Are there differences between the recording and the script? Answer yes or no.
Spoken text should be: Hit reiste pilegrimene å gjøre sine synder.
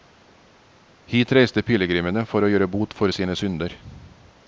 yes